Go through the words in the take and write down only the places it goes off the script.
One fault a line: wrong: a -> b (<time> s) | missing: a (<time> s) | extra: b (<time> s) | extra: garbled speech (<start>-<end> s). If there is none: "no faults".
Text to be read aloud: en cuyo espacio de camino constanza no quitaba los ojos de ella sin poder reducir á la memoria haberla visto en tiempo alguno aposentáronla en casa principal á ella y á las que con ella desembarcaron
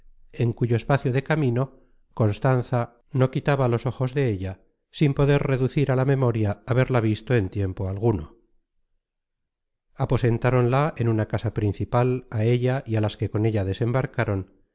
extra: una (11.1 s)